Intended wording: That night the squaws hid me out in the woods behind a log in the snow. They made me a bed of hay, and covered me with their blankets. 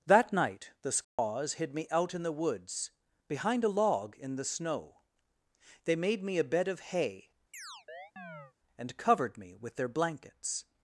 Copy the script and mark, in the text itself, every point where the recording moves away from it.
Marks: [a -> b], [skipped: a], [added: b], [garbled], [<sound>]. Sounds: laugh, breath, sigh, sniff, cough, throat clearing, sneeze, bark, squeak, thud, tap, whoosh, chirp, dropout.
That night the squaws [dropout] hid me out in the woods behind a log in the snow. They made me a bed of hay, [chirp] and covered me with their blankets.